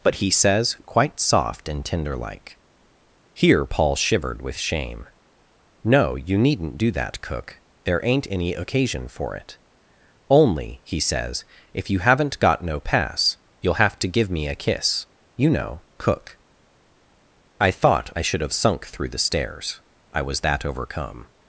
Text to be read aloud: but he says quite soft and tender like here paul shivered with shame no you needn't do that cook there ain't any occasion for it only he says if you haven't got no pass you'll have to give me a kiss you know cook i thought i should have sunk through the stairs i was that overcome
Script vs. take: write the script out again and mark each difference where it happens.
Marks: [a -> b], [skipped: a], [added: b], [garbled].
but he says quite soft and tender like here paul shivered with shame no you needn't do that cook there ain't any occasion for it only he says if you haven't got no pass you'll have to give me a kiss you know cook i thought i should have sunk through the stairs i was that overcome